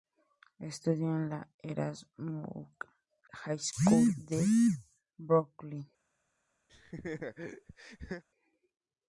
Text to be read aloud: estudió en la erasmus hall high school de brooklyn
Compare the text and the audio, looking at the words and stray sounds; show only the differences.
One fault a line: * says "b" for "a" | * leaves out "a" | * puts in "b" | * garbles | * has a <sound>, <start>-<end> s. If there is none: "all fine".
* leaves out "hall"
* has a laugh, 6.7-8.2 s